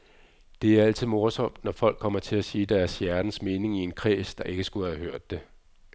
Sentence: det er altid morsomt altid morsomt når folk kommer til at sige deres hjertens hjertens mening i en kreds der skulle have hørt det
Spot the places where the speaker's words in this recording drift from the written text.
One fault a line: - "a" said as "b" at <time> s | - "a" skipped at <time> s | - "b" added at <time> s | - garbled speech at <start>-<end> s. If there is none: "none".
- "altid morsomt" skipped at 1.6 s
- "hjertens" skipped at 3.4 s
- "ikke" added at 4.4 s